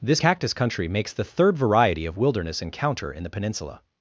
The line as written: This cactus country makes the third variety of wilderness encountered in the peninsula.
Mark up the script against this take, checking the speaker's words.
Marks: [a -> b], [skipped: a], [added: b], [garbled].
This cactus country makes the third variety of wilderness [encountered -> encounter] in the peninsula.